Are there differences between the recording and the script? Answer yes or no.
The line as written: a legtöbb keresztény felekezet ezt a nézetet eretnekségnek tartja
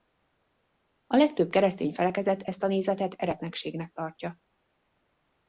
no